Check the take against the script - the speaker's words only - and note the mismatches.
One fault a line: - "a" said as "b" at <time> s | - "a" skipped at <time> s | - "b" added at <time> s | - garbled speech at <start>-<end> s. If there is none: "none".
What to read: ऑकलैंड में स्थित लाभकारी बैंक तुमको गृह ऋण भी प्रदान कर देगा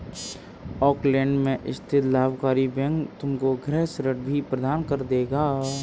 none